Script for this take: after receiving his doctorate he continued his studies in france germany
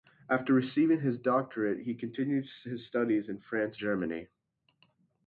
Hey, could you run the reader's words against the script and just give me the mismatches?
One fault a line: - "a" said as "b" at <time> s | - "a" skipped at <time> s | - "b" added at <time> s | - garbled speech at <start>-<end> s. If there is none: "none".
none